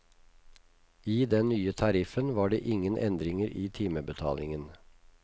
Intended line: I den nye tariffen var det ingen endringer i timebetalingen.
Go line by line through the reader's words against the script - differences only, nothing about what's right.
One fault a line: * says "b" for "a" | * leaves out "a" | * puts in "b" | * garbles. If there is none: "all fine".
all fine